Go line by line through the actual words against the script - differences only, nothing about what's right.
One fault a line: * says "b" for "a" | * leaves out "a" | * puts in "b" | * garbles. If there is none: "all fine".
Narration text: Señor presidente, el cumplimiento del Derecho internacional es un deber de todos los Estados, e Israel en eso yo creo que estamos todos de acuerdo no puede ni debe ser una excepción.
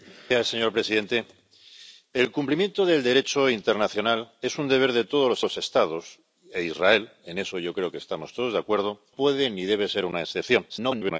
* puts in "los"
* leaves out "no"
* garbles